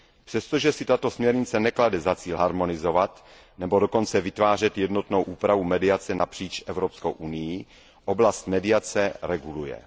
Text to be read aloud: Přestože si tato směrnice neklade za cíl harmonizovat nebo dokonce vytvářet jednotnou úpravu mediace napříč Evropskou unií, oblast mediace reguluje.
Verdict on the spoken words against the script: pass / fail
pass